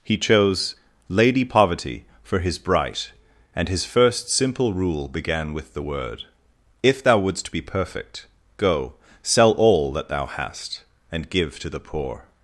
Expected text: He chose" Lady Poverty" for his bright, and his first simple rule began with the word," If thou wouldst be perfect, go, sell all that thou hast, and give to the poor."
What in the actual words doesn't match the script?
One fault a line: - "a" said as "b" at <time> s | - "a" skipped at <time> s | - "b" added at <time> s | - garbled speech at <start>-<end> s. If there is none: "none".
none